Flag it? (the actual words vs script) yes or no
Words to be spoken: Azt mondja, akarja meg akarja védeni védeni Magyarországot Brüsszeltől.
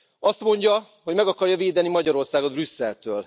yes